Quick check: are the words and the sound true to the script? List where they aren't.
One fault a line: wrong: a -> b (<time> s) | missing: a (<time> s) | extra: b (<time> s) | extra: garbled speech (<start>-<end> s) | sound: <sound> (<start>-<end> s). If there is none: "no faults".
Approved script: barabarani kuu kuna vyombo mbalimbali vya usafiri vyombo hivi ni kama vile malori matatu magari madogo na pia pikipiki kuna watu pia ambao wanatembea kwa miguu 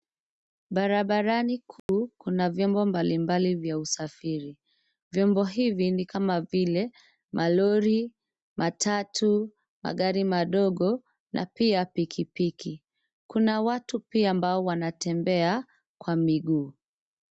sound: dropout (1.8-1.9 s)